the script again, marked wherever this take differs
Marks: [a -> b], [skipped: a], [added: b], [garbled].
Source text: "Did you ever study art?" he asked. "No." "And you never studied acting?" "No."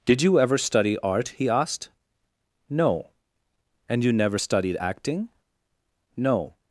"Did you ever study art?" he asked. "No." "And you never studied acting?" "No."